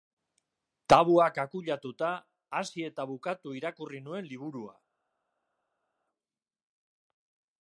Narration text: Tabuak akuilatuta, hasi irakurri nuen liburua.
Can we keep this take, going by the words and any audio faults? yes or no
no